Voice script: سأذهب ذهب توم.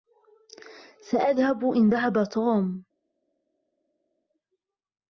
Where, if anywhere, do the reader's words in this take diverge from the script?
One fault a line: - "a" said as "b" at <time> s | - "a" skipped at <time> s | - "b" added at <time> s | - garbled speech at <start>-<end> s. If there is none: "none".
- "إن" added at 1.6 s